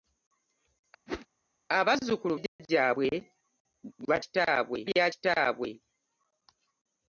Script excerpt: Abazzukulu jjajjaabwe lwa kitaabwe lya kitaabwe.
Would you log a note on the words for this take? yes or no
no